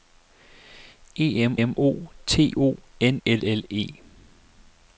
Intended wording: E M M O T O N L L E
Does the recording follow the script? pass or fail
pass